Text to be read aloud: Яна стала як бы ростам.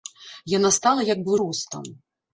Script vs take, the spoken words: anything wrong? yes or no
no